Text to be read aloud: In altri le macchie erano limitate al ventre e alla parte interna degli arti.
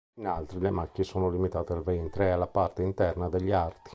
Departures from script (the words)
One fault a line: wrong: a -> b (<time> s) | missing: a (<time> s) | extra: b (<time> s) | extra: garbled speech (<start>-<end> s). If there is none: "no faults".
wrong: erano -> sono (1.0 s)